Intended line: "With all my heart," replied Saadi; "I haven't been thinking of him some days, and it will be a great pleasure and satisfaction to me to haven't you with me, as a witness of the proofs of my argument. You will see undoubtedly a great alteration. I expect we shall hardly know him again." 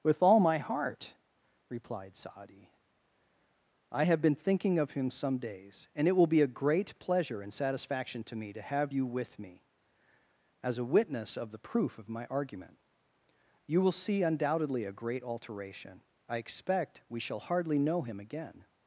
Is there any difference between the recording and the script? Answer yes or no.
yes